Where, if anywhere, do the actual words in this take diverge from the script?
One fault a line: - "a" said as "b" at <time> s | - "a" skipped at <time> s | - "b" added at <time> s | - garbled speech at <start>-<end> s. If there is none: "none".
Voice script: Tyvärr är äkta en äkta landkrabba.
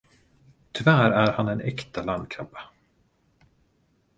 - "äkta" said as "han" at 1.3 s